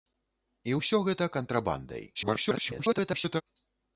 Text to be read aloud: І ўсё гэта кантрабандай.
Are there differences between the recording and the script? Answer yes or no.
yes